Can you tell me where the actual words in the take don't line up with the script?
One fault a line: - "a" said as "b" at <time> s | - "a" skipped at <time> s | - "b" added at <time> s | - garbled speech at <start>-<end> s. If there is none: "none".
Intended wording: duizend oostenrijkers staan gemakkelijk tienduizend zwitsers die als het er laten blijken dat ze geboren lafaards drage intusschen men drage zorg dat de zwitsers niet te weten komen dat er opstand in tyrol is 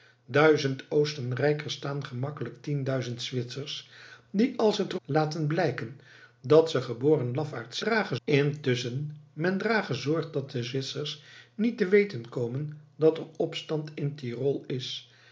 none